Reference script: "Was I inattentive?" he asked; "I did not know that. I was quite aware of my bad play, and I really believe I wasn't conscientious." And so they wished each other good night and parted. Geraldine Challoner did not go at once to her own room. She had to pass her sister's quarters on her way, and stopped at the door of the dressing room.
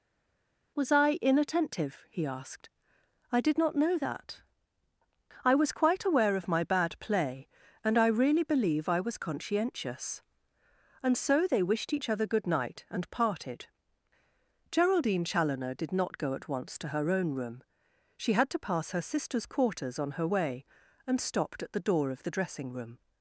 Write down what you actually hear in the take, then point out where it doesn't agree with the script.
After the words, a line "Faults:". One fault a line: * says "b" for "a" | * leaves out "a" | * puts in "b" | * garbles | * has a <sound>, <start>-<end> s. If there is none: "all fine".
"Was I inattentive?" he asked; "I did not know that. I was quite aware of my bad play, and I really believe I was conscientious." And so they wished each other good night and parted. Geraldine Challoner did not go at once to her own room. She had to pass her sister's quarters on her way, and stopped at the door of the dressing room.
Faults:
* says "was" for "wasn't"